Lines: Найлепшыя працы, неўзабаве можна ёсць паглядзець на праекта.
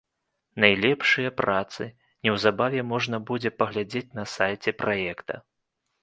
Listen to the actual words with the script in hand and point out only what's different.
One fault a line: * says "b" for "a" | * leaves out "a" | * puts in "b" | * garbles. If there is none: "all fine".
* says "будзе" for "ёсць"
* puts in "сайце"